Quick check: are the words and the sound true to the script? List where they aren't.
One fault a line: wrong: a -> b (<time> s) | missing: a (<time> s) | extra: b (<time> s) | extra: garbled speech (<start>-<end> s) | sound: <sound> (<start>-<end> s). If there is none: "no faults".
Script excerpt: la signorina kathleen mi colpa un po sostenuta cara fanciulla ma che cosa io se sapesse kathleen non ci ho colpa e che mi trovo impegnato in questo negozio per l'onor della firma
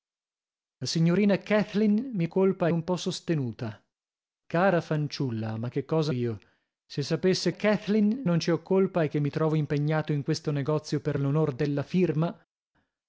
no faults